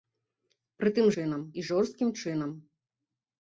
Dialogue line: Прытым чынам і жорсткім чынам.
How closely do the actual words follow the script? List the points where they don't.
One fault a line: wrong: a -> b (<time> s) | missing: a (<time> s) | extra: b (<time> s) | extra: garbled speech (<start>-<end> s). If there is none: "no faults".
no faults